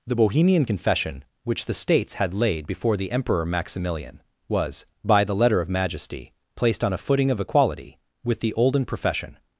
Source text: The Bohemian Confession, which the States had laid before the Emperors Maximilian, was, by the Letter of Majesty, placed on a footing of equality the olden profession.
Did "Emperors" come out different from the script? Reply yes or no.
yes